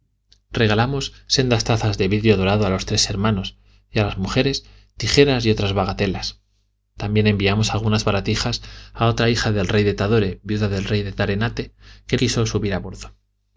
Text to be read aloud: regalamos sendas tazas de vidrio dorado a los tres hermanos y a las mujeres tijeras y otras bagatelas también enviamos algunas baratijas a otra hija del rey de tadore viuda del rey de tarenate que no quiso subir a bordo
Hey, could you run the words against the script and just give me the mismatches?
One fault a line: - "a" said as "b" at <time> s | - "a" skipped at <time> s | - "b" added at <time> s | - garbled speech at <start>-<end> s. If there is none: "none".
- "no" skipped at 12.2 s